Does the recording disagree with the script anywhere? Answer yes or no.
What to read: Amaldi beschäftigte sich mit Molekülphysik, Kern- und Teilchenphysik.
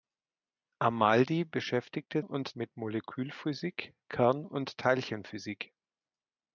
yes